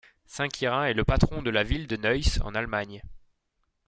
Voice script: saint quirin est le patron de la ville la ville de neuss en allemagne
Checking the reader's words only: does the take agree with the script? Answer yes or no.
no